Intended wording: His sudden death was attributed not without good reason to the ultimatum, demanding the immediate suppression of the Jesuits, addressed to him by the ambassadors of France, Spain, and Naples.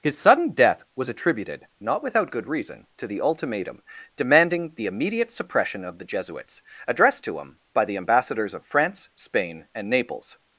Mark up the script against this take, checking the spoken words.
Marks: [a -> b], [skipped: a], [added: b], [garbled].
His sudden death was attributed not without good reason to the ultimatum, demanding the immediate suppression of the Jesuits, addressed to him by the ambassadors of France, Spain, and Naples.